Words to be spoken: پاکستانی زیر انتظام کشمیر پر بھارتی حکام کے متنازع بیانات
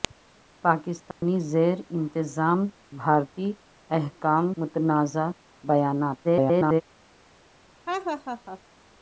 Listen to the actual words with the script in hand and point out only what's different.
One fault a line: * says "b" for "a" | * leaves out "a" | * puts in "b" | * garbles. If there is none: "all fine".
* leaves out "کشمیر پر"
* leaves out "کے"
* garbles